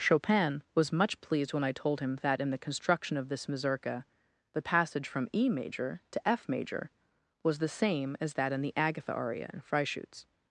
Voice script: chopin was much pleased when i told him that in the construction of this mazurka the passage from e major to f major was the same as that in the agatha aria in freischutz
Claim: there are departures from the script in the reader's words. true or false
false